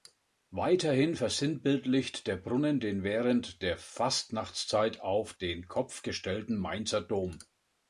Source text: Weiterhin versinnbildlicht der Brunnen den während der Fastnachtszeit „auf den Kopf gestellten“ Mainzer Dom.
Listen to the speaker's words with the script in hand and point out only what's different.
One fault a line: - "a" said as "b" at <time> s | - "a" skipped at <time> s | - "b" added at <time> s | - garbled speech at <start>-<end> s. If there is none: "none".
none